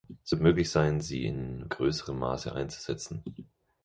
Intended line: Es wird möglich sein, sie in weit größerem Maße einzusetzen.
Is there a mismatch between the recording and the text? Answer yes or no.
yes